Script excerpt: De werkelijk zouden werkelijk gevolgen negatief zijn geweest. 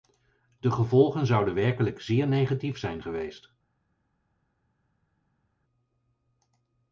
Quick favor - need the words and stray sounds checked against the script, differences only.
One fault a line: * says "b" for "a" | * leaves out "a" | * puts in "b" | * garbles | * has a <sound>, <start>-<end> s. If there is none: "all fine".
* says "gevolgen" for "werkelijk"
* says "zeer" for "gevolgen"